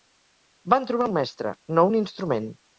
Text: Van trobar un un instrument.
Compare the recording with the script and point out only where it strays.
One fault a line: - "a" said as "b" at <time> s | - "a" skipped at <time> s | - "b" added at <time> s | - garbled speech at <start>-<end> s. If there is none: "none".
- "mestre no" added at 1.2 s